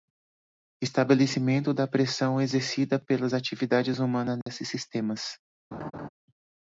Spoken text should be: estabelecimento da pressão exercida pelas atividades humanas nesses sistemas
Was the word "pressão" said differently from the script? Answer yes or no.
no